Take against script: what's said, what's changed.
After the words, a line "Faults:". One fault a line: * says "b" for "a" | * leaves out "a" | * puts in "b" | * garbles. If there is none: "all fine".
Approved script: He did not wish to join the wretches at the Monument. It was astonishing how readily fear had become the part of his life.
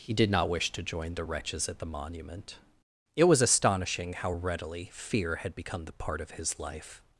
He did not wish to join the wretches at the Monument. It was astonishing how readily fear had become the part of his life.
Faults:
all fine